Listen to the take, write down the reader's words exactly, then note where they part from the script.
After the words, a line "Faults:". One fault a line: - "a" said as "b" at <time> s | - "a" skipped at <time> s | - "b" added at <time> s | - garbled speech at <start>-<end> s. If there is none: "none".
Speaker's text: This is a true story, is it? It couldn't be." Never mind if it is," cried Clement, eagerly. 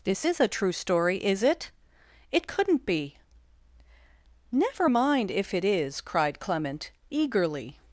This is a true story, is it? It couldn't be." Never mind if it is," cried Clement, eagerly.
Faults:
none